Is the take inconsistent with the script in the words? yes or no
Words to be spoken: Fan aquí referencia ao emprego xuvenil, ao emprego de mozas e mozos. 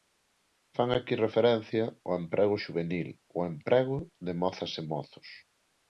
no